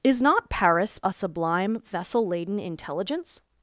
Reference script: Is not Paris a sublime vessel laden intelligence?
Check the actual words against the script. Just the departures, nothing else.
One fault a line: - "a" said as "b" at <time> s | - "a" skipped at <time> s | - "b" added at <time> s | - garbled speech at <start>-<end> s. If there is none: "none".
none